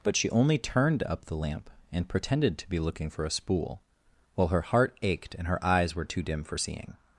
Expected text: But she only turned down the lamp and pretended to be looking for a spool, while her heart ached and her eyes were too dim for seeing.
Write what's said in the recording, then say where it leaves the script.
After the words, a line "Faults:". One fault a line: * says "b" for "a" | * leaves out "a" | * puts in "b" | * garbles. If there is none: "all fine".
But she only turned up the lamp and pretended to be looking for a spool, while her heart ached and her eyes were too dim for seeing.
Faults:
* says "up" for "down"